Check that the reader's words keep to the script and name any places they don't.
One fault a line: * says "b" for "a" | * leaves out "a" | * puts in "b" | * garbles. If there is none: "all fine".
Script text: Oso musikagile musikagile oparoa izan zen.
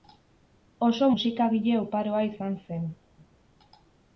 * leaves out "musikagile"